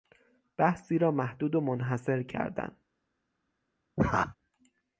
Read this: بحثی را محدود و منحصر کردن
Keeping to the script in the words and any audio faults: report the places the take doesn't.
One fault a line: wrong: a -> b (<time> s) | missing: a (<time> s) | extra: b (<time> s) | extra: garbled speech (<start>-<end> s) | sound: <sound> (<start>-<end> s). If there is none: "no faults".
sound: laugh (4.0-4.4 s)